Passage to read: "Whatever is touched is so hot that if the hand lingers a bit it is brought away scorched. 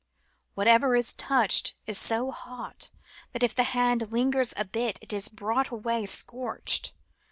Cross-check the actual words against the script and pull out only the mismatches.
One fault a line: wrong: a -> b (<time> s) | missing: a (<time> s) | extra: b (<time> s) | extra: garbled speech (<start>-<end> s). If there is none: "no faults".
no faults